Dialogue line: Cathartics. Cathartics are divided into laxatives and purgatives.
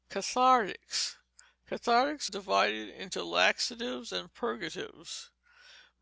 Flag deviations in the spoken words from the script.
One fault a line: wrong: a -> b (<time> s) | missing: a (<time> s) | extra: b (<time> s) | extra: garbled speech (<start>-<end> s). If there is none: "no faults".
missing: are (2.3 s)